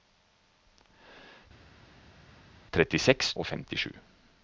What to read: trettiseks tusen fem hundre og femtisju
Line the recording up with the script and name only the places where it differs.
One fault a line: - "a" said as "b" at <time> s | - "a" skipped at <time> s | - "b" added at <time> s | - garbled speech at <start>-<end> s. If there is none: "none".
- "tusen fem hundre" skipped at 3.3 s